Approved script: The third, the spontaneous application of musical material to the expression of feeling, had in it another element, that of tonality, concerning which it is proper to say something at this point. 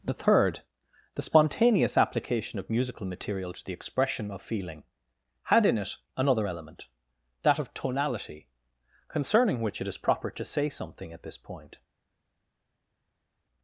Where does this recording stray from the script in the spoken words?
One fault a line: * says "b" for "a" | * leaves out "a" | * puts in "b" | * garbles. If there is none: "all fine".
all fine